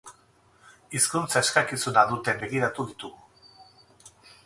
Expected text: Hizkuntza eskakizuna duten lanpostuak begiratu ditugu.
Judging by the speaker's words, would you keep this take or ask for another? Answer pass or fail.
fail